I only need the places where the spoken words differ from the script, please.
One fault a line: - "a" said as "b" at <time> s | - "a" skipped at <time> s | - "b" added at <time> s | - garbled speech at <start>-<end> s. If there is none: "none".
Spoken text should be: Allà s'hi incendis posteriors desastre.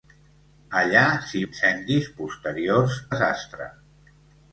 none